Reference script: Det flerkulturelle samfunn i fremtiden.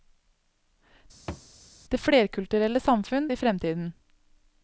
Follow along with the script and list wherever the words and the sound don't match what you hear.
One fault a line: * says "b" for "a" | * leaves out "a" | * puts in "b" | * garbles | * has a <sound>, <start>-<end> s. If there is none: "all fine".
* has a thud, 1.3-1.5 s